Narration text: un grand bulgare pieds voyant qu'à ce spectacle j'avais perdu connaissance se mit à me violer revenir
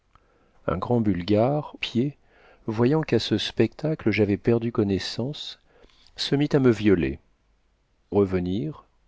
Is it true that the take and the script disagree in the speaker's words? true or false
false